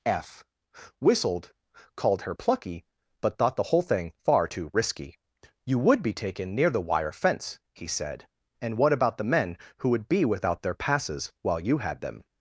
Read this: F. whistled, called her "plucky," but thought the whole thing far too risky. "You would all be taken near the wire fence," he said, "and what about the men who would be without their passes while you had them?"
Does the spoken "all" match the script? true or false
false